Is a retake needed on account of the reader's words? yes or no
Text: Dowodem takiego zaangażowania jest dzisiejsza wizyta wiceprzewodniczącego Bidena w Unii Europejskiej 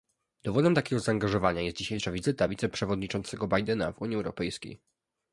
no